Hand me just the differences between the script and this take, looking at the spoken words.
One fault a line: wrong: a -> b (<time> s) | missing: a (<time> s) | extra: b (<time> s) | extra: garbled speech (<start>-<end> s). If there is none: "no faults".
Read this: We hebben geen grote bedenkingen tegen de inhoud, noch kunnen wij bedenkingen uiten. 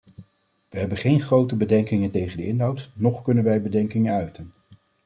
no faults